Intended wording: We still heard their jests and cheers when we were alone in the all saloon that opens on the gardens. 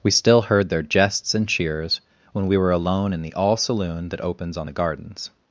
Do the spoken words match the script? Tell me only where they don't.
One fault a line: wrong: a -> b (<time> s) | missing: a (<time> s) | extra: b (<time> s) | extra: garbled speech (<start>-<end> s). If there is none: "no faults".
no faults